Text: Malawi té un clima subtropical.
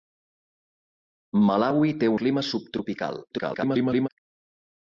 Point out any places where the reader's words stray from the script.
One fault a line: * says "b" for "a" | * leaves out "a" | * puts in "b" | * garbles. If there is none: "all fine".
* leaves out "un"
* garbles